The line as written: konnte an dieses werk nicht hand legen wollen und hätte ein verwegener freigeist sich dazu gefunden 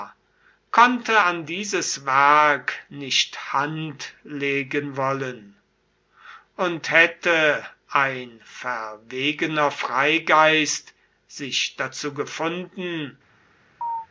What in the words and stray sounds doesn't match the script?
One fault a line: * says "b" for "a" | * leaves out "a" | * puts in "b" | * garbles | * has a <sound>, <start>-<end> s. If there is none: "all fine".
* has a chirp, 13.8-14.1 s